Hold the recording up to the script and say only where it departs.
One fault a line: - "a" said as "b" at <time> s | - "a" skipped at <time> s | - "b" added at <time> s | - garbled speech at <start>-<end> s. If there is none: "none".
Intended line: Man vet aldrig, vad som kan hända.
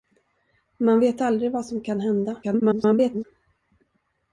- garbled speech at 2.4-3.2 s